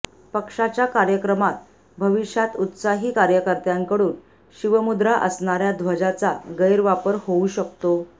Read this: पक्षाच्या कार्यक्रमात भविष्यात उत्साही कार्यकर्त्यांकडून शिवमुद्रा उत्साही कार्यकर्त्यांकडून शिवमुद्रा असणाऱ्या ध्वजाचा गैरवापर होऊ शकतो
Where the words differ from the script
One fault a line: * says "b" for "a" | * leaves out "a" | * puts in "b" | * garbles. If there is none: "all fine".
* leaves out "उत्साही कार्यकर्त्यांकडून शिवमुद्रा"